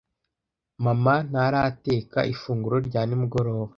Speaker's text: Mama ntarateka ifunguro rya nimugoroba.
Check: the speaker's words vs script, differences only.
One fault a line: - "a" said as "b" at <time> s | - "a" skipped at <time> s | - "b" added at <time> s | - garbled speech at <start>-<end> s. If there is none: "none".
none